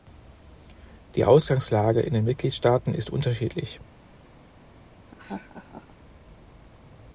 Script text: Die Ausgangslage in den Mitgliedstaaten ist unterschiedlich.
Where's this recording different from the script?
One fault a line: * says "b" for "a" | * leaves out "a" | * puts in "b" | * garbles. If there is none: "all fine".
all fine